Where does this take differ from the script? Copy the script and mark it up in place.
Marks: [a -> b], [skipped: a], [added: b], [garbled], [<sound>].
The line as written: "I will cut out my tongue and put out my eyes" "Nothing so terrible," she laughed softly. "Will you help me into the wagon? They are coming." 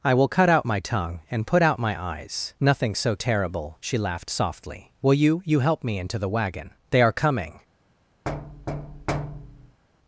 "I will cut out my tongue and put out my eyes" "Nothing so terrible," she laughed softly. "Will you [added: you] help me into the wagon? They are coming." [thud]